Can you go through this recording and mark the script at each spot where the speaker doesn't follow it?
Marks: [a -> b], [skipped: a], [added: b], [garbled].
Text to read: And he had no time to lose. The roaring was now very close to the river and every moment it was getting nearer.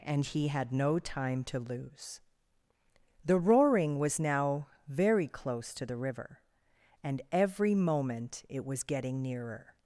And he had no time to lose. The roaring was now very close to the river and every moment it was getting nearer.